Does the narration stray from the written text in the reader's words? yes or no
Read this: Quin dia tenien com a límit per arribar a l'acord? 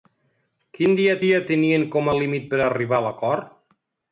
yes